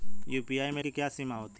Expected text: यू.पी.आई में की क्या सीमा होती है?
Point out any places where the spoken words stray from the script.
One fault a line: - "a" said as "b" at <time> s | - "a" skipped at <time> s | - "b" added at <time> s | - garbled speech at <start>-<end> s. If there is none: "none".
none